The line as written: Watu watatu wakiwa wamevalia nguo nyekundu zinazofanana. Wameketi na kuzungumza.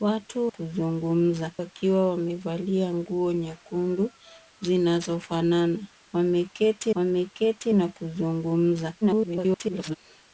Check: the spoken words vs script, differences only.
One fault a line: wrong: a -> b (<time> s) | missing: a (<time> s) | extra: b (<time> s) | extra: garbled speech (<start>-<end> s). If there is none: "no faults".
wrong: watatu -> kuzungumza (0.5 s)
extra: wameketi (7.0 s)
extra: garbled speech (9.0-10.0 s)